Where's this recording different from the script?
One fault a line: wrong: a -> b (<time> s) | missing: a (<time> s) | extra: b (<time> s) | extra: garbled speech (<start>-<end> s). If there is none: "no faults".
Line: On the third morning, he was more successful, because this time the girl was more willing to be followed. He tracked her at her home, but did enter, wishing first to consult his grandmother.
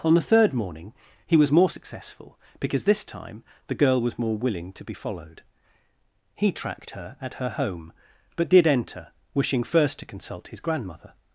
no faults